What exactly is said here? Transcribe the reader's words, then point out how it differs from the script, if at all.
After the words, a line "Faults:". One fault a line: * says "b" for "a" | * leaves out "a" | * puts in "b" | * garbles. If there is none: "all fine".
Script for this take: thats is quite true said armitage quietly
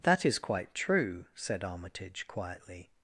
that is quite true said armitage quietly
Faults:
* says "that" for "thats"